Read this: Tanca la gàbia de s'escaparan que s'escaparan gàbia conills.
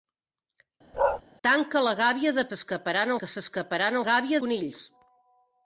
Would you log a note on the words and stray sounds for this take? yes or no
yes